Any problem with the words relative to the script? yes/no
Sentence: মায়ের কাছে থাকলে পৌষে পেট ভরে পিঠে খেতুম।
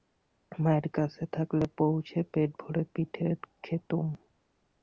no